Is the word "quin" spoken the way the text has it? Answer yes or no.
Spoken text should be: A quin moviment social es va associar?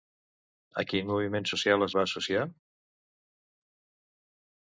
yes